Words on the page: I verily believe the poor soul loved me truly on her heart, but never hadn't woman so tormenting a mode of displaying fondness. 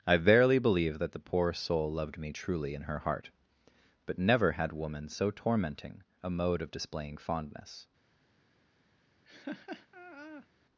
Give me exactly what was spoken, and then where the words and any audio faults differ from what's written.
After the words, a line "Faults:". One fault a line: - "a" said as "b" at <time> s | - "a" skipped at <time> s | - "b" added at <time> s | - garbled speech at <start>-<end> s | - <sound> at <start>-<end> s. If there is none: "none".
I verily believe that the poor soul loved me truly in her heart, but never had woman so tormenting a mode of displaying fondness.
Faults:
- "that" added at 1.0 s
- "on" said as "in" at 2.7 s
- "hadn't" said as "had" at 4.5 s
- laugh at 9.2-10.5 s